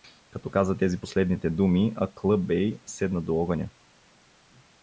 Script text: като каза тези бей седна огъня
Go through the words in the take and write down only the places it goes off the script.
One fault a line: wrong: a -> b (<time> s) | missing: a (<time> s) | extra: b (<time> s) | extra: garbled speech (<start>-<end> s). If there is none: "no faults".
extra: последните думи аклъ (1.0 s)
extra: до (3.2 s)